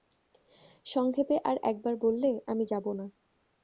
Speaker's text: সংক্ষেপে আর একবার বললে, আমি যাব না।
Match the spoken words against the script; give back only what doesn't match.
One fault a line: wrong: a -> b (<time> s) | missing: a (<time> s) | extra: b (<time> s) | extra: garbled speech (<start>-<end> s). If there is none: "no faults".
no faults